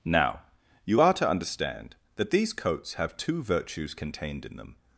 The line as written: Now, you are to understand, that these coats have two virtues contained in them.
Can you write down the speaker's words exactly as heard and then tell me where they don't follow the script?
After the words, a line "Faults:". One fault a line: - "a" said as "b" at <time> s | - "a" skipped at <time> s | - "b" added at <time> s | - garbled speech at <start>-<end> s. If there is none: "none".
Now, you are to understand, that these coats have two virtues contained in them.
Faults:
none